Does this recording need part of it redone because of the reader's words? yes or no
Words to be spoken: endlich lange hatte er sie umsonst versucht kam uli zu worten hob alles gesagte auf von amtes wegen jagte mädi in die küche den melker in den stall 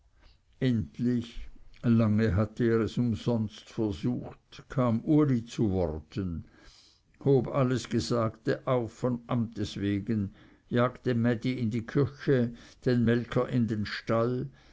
yes